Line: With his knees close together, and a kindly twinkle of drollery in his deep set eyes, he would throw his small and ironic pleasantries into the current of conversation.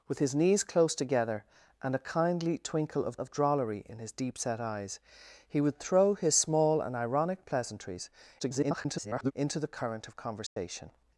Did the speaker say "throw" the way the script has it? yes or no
yes